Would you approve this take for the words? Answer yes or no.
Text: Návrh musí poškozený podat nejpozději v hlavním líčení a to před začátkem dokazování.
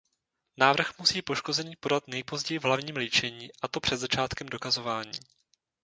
yes